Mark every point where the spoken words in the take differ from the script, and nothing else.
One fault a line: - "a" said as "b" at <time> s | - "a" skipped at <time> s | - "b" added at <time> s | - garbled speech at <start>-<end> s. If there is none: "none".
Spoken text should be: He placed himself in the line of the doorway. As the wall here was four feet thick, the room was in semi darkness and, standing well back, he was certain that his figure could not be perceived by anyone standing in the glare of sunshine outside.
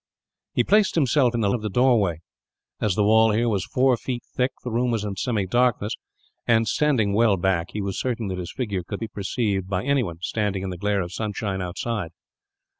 - "line" skipped at 1.5 s
- "not" skipped at 9.0 s